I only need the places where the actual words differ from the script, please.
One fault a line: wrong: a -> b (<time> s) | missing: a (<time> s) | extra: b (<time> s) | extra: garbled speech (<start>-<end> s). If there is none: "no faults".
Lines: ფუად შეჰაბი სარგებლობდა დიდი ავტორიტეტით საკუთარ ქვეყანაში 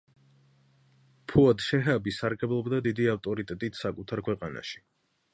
no faults